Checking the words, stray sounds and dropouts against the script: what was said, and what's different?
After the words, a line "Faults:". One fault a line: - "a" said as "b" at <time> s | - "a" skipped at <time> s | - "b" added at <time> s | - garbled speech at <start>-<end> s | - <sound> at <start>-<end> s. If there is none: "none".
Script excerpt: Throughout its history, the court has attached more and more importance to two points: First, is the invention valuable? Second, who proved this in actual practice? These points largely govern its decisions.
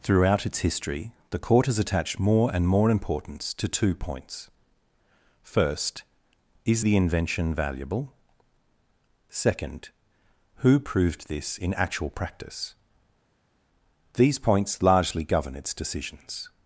Throughout its history, the court has attached more and more importance to two points: First, is the invention valuable? Second, who proved this in actual practice? These points largely govern its decisions.
Faults:
none